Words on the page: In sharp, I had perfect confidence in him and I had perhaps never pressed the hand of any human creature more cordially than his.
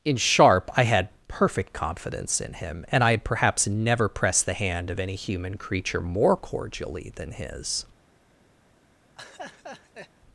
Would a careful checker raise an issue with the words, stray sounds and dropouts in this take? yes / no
yes